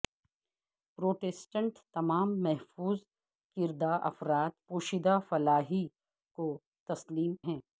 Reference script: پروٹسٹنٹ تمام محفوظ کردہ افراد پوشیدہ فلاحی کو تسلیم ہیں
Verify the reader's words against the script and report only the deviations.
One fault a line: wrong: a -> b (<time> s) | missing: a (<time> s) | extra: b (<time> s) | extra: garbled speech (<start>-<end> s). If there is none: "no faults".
no faults